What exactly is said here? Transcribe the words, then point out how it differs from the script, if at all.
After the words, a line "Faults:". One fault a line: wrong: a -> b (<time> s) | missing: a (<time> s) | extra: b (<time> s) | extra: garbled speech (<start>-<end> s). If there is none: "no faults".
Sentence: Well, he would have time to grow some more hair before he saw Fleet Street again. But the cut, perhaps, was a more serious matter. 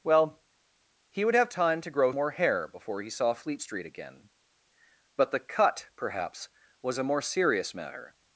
Well, he would have time to grow more hair before he saw Fleet Street again. But the cut, perhaps, was a more serious matter.
Faults:
missing: some (2.1 s)